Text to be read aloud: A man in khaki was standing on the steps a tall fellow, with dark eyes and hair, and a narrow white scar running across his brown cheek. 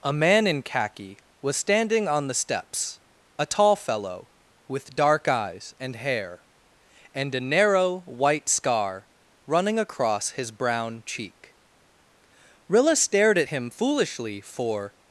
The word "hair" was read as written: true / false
true